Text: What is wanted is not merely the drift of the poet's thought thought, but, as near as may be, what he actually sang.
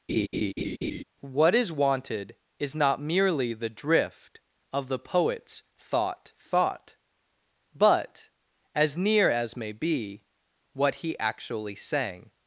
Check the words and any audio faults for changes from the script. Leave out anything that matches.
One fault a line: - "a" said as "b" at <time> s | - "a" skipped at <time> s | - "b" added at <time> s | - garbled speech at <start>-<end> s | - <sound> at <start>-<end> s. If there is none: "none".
- laugh at 0.1-1.0 s